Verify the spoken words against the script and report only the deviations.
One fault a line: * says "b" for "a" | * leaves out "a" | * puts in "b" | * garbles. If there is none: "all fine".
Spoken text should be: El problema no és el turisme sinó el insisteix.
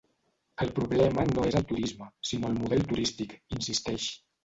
* puts in "model turístic"